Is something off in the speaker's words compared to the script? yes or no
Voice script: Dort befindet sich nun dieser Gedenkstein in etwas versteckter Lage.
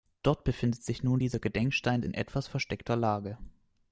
no